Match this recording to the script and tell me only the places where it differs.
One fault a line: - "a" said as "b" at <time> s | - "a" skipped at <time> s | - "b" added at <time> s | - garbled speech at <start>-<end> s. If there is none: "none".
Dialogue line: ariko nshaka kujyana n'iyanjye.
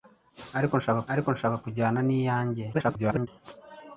- "ariko nshaka" added at 1.1 s
- garbled speech at 2.7-3.3 s